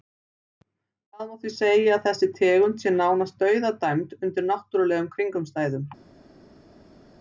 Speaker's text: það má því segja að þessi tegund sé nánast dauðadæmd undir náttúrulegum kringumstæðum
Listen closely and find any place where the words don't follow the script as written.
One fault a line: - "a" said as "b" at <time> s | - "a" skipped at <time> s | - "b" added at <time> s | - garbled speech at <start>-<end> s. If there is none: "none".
none